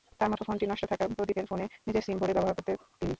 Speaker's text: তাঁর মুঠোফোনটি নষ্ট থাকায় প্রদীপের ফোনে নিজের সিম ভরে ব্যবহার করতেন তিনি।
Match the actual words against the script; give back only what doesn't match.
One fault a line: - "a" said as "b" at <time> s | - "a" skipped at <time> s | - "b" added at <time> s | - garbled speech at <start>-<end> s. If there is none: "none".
none